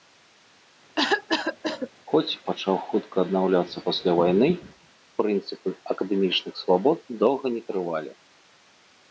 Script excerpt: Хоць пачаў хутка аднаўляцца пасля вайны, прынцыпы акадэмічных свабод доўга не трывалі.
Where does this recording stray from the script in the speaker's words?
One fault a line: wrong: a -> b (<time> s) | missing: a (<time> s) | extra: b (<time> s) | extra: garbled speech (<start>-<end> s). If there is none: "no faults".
no faults